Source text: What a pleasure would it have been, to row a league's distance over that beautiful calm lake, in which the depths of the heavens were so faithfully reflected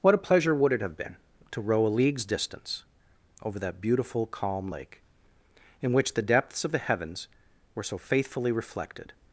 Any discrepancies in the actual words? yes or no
no